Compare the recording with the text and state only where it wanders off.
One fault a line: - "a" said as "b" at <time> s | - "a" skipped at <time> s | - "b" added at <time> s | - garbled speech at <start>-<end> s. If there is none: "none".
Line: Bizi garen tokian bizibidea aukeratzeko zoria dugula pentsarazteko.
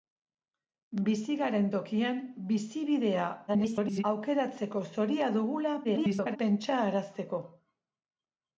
- garbled speech at 3.5-4.0 s
- garbled speech at 5.8-6.4 s